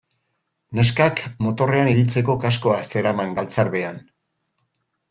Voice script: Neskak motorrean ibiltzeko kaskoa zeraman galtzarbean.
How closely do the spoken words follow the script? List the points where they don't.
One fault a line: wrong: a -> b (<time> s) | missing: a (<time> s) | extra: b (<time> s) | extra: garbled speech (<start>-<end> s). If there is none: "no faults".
no faults